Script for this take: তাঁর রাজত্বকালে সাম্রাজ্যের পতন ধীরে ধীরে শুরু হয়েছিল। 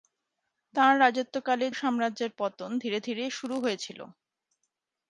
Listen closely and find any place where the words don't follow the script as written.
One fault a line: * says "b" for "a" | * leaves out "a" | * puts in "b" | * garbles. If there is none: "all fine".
all fine